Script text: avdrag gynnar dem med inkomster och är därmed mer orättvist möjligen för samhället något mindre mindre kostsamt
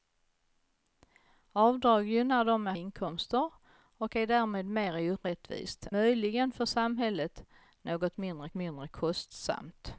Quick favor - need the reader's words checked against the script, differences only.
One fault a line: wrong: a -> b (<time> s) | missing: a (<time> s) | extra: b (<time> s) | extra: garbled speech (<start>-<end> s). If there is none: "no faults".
no faults